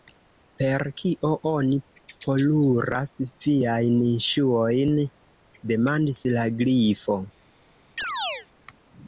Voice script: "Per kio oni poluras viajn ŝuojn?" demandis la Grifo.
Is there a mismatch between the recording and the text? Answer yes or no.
no